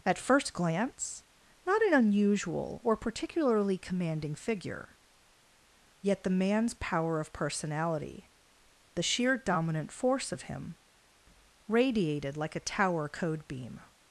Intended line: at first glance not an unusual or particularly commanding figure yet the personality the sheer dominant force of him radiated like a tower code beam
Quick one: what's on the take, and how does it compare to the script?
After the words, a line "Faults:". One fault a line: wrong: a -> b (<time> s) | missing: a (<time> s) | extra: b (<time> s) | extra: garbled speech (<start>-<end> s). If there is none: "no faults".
at first glance not an unusual or particularly commanding figure yet the man's power of personality the sheer dominant force of him radiated like a tower code beam
Faults:
extra: man's power of (6.3 s)